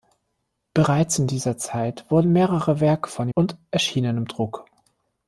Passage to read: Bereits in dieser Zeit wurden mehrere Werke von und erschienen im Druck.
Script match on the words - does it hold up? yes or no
yes